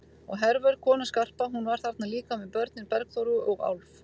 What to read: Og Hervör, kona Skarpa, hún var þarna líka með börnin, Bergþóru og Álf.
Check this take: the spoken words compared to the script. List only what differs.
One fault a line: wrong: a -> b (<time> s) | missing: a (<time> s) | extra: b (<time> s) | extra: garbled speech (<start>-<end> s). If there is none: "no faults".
no faults